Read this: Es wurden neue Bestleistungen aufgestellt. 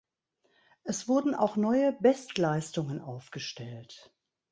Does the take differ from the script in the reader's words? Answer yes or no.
yes